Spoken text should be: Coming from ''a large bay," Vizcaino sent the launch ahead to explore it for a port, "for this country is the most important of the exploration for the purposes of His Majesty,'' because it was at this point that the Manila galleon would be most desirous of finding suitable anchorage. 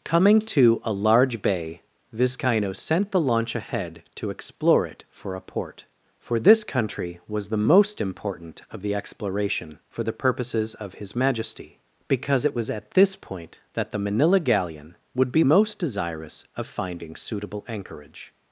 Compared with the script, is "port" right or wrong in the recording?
right